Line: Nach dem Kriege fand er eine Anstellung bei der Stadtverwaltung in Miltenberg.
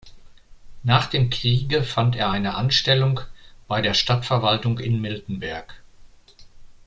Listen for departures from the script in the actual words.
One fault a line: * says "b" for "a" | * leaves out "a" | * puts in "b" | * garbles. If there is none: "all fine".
all fine